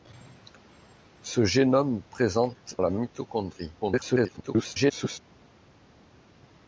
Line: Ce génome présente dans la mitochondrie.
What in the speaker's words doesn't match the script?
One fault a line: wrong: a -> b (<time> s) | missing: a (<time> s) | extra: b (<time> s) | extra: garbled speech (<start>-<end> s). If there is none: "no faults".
missing: dans (2.8 s)
extra: garbled speech (3.8-5.2 s)